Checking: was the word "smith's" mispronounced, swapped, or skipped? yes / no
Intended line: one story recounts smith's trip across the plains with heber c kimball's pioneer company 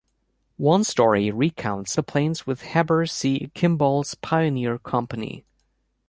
yes